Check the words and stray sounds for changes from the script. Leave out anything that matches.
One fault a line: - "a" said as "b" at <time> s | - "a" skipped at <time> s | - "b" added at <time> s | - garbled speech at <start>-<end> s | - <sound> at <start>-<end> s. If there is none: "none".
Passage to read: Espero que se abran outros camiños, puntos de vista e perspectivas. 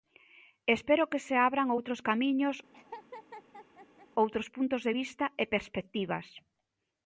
- laugh at 2.7-4.1 s
- "outros" added at 4.2 s